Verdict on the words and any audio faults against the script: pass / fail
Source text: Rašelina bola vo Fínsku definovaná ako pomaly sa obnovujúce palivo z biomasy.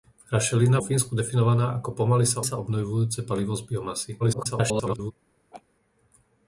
fail